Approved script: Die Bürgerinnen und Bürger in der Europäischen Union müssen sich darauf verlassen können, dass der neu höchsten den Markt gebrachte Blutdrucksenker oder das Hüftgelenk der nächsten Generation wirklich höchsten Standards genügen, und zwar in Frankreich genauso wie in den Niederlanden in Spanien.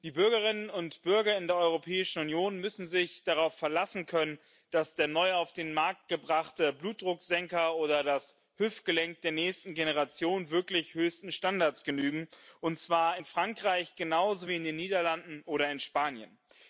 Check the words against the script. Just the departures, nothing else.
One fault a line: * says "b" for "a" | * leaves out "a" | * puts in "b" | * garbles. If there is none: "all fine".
* says "auf" for "höchsten"
* puts in "oder"